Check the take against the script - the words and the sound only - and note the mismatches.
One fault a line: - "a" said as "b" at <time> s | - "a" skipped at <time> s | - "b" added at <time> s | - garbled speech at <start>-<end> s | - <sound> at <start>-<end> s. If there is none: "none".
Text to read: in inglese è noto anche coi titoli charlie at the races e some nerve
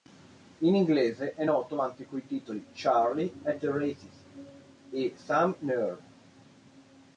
none